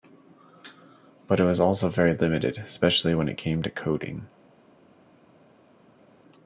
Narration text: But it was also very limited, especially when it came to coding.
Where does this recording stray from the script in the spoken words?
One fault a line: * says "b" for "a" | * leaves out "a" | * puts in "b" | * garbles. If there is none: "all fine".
all fine